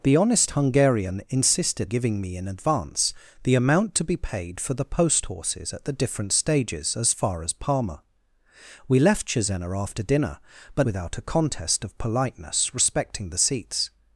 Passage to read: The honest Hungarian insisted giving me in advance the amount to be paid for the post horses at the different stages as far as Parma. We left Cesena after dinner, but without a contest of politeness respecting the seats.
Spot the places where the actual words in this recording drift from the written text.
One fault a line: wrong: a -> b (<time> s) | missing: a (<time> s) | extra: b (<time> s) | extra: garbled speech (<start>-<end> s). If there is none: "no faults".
no faults